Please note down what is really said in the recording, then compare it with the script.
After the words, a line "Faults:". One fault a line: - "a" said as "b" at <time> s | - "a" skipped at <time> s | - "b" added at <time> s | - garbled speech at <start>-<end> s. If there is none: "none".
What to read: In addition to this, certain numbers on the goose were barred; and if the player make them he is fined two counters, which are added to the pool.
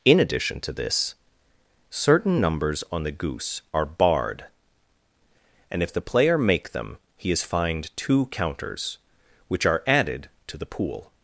In addition to this, certain numbers on the goose are barred; and if the player make them he is fined two counters, which are added to the pool.
Faults:
- "were" said as "are" at 3.7 s